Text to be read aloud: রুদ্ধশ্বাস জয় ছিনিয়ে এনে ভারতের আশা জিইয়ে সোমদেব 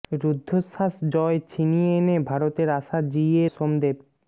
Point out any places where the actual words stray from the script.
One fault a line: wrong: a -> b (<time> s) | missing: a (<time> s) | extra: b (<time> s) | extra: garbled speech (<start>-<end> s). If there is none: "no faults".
no faults